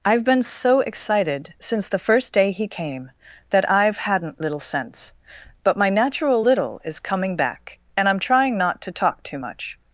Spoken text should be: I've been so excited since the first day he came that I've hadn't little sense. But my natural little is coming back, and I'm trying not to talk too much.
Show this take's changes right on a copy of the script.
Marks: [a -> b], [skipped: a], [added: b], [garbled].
I've been so excited since the first day he came that I've hadn't little sense. But my natural little is coming back, and I'm trying not to talk too much.